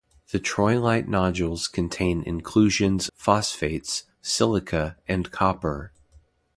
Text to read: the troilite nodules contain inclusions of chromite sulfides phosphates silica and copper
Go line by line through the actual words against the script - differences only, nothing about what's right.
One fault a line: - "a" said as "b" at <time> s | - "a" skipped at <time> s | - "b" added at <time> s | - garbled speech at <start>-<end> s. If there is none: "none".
- "of chromite sulfides" skipped at 3.1 s